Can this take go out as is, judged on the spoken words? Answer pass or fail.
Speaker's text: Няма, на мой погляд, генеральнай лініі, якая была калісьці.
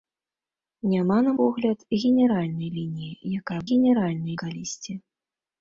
fail